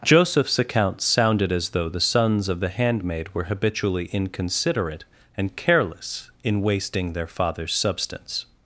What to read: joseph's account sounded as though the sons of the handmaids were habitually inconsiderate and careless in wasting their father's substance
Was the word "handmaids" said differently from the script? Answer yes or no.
yes